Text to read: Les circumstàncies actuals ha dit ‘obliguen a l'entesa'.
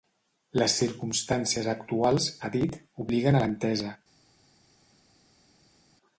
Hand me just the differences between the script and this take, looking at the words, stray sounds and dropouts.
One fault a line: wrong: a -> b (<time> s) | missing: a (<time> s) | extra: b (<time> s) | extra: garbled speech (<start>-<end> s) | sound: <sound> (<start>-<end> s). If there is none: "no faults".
no faults